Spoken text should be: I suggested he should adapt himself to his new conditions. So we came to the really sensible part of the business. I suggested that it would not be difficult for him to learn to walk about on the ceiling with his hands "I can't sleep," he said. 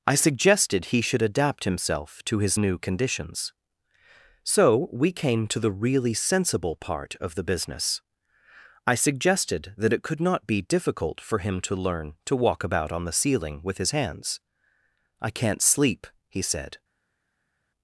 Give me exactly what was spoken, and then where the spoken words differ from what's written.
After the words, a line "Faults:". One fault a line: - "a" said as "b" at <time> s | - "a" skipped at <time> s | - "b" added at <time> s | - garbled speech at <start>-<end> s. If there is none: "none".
I suggested he should adapt himself to his new conditions. So we came to the really sensible part of the business. I suggested that it could not be difficult for him to learn to walk about on the ceiling with his hands "I can't sleep," he said.
Faults:
- "would" said as "could" at 10.0 s